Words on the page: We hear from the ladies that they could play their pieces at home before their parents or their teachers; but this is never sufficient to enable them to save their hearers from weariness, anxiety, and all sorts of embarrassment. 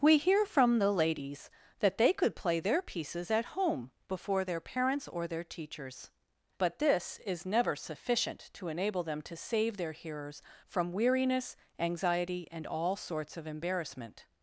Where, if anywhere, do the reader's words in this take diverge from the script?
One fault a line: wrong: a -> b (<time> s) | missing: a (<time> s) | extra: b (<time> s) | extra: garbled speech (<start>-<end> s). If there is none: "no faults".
no faults